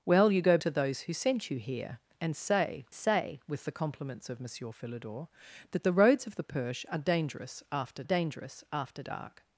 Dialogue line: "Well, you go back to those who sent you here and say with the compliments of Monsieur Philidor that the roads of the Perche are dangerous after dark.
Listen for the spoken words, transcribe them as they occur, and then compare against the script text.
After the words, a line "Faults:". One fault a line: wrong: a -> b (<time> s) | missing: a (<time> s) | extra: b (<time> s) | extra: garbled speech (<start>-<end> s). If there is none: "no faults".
"Well, you go to those who sent you here and say say with the compliments of Monsieur Philidor that the roads of the Perche are dangerous after dangerous after dark.
Faults:
missing: back (0.6 s)
extra: say (2.9 s)
extra: dangerous after (8.0 s)